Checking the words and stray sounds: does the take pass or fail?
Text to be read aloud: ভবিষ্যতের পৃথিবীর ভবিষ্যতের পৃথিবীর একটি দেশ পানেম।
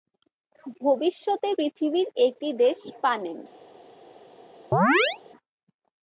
fail